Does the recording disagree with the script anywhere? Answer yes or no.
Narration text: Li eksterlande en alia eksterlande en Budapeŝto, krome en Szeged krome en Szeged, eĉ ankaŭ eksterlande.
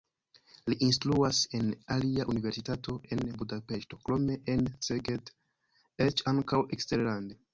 yes